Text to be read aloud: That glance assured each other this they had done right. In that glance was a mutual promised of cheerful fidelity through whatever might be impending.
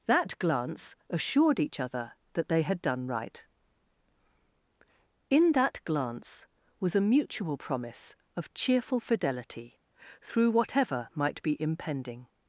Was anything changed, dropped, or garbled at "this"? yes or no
yes